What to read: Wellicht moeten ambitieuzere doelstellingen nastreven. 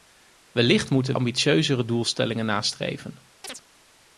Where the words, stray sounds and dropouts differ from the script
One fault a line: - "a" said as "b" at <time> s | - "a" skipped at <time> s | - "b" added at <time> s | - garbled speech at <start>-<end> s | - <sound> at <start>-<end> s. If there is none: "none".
- chirp at 3.4-3.6 s